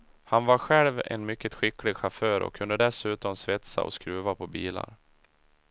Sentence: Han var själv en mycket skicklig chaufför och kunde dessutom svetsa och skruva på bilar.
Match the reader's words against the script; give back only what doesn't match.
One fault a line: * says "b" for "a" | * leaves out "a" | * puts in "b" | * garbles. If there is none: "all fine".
all fine